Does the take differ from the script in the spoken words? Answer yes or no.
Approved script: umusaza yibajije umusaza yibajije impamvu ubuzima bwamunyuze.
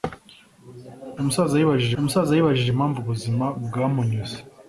no